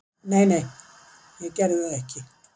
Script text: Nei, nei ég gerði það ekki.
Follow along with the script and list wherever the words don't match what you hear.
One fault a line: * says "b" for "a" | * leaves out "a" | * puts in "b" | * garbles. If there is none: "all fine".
all fine